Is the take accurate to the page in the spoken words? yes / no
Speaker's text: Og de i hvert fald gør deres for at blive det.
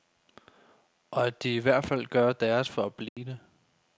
no